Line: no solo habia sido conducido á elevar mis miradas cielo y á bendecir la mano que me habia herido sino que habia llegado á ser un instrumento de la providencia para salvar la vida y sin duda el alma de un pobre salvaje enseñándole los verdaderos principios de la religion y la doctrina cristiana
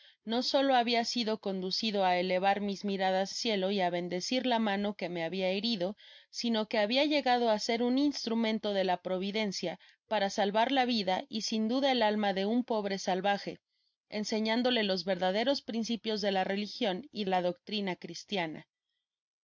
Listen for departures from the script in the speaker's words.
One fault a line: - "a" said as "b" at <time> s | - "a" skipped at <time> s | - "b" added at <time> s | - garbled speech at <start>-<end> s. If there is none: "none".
none